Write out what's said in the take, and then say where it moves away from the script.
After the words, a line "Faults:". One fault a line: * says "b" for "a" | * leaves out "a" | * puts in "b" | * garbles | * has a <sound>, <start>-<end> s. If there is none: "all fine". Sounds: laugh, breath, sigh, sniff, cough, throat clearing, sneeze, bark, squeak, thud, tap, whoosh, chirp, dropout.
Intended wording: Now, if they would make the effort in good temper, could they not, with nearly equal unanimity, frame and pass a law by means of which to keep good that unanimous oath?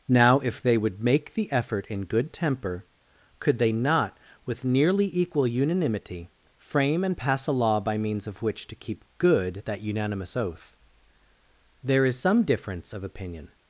Now, if they would make the effort in good temper, could they not, with nearly equal unanimity, frame and pass a law by means of which to keep good that unanimous oath? There is some difference of opinion
Faults:
* puts in "There is some difference of opinion"